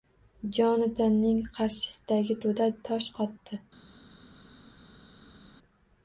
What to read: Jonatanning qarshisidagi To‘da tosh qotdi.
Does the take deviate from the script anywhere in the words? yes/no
no